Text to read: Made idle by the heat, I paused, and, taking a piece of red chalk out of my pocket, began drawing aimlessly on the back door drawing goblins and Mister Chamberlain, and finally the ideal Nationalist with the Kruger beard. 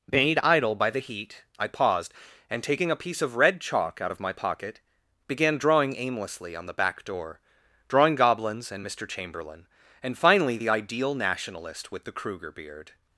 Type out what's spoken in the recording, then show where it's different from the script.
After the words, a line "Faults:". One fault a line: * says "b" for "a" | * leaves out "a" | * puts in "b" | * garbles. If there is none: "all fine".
Made idle by the heat, I paused, and, taking a piece of red chalk out of my pocket, began drawing aimlessly on the back door drawing goblins and Mister Chamberlain, and finally the ideal Nationalist with the Kruger beard.
Faults:
all fine